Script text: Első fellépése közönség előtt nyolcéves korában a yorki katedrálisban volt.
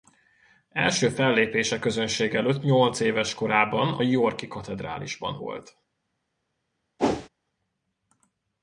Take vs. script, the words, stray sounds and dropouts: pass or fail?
fail